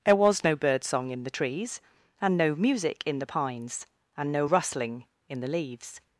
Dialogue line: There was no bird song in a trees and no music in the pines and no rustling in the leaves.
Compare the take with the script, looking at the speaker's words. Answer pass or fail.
fail